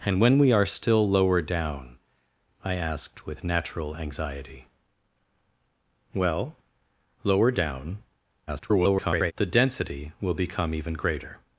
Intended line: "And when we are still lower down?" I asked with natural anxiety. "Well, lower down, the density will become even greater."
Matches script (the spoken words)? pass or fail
fail